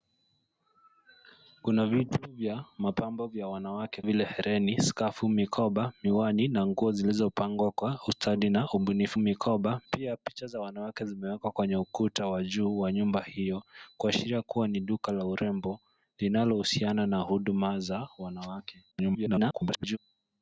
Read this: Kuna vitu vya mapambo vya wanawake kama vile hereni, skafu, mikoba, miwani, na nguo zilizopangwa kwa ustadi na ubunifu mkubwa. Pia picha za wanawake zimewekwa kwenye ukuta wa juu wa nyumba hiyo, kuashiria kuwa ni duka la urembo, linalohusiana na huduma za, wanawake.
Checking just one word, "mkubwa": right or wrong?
wrong